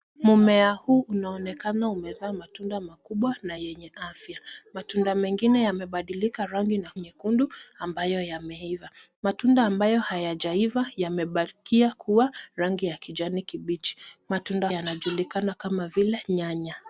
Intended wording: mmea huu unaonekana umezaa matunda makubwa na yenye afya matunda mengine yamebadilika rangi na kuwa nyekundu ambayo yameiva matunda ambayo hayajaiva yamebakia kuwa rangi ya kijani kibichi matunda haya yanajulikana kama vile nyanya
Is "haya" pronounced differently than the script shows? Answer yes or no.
yes